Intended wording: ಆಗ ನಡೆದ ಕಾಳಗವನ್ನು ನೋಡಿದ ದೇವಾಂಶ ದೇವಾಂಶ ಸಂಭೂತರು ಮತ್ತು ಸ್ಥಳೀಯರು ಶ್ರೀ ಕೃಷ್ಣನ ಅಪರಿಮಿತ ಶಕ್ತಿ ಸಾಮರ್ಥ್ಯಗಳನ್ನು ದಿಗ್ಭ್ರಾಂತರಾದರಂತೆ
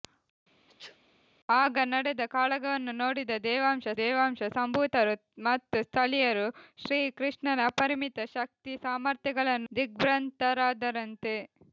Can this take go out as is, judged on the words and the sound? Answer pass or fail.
fail